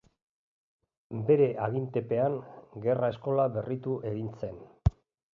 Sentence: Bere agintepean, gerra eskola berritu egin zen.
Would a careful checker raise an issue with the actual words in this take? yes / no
no